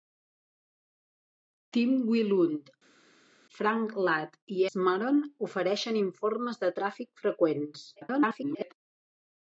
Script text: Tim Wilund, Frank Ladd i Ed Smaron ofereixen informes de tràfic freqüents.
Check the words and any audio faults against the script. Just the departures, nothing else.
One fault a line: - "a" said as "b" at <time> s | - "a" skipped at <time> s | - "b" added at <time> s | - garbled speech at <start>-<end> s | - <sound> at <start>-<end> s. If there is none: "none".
- "Ed" skipped at 4.7 s
- garbled speech at 8.0-8.7 s